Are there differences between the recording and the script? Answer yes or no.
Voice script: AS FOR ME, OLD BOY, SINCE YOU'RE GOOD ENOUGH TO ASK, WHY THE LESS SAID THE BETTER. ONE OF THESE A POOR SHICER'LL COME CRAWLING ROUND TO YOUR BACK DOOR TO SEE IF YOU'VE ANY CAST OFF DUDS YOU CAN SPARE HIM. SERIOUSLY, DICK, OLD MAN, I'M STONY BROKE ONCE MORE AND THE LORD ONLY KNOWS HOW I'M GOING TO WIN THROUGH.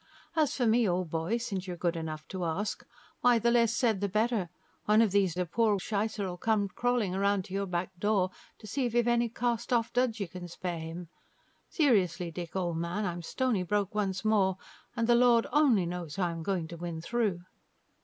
no